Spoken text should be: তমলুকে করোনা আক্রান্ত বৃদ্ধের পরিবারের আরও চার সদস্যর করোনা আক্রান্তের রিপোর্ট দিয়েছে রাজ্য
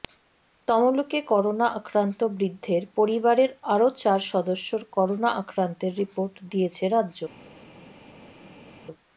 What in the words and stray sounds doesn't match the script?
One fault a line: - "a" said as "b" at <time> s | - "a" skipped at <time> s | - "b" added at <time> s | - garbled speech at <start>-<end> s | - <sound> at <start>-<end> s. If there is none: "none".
none